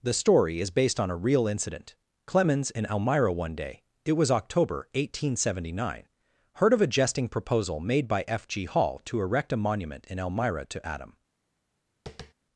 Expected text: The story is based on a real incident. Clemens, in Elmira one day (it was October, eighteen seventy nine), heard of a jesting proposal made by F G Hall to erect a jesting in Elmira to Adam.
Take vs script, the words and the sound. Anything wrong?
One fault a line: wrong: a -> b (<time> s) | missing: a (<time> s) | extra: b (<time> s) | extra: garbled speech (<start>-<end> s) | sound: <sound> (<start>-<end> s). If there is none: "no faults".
wrong: jesting -> monument (9.6 s)
sound: tap (12.1-12.3 s)